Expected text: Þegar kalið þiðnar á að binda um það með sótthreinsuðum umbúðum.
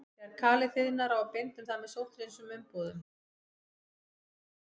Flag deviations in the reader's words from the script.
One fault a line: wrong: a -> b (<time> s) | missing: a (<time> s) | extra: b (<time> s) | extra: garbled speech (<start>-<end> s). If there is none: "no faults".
no faults